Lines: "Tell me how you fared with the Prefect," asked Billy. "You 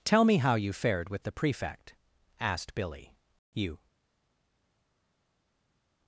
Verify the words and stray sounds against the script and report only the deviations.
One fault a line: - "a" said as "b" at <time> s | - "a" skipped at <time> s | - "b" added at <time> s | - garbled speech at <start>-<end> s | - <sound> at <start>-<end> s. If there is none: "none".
none